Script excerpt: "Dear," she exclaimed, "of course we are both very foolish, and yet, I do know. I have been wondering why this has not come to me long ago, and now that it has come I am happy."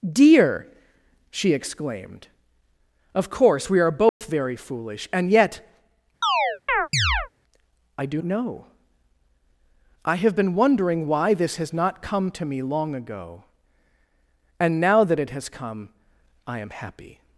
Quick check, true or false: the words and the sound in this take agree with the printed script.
false